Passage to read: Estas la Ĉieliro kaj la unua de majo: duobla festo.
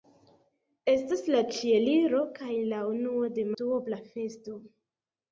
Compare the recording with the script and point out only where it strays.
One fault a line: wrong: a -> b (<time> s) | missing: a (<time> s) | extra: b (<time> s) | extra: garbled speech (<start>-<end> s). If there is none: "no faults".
missing: majo (3.5 s)